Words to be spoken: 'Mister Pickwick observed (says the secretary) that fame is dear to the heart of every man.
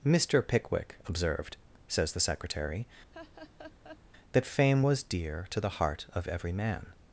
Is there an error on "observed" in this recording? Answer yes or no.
no